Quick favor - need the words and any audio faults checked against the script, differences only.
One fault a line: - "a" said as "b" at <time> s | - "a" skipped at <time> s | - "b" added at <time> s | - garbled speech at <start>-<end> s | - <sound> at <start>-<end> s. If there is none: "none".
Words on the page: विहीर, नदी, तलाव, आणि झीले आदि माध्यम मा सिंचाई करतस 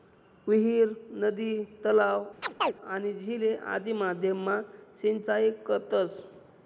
- chirp at 2.4-2.7 s